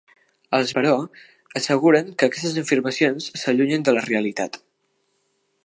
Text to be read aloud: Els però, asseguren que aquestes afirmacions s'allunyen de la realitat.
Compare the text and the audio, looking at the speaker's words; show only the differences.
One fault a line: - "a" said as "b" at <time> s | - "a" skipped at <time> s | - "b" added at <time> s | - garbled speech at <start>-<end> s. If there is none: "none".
none